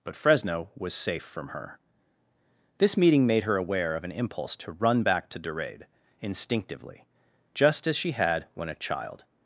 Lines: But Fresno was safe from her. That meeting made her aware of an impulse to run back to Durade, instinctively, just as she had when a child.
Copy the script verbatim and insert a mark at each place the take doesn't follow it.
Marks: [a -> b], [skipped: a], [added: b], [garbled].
But Fresno was safe from her. [That -> This] meeting made her aware of an impulse to run back to Durade, instinctively, just as she had when a child.